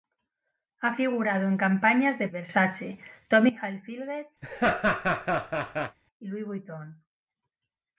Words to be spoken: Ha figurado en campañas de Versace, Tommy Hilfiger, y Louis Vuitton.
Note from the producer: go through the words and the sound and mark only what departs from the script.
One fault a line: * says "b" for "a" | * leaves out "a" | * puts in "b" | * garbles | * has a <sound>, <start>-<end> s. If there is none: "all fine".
* has a laugh, 4.4-6.0 s